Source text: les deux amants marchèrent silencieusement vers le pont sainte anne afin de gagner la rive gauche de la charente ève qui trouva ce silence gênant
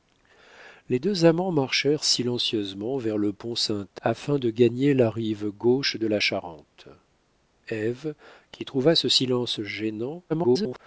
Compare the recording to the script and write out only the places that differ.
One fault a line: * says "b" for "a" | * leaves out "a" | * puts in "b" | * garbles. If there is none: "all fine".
* leaves out "anne"
* garbles